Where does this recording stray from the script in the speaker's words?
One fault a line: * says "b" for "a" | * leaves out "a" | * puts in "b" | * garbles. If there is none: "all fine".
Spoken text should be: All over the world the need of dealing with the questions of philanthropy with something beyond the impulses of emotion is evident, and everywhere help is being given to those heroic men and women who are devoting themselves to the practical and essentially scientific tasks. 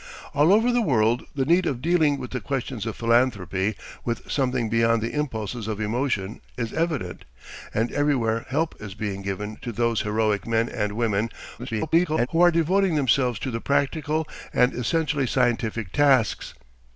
* garbles